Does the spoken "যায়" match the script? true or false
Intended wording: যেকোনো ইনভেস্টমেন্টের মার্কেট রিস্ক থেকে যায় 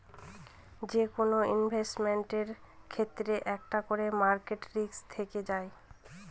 true